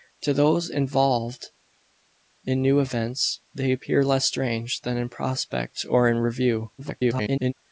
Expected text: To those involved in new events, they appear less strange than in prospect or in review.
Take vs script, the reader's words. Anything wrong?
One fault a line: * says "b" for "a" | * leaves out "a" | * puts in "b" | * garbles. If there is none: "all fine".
* garbles